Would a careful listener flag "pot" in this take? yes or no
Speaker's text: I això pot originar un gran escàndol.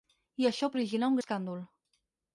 yes